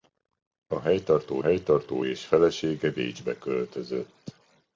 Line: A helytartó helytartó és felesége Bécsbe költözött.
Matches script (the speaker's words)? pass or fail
pass